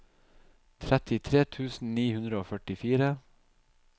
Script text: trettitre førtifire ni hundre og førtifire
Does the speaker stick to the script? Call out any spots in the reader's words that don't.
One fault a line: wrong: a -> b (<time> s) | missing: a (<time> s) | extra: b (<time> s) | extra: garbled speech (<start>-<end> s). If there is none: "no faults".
wrong: førtifire -> tusen (1.6 s)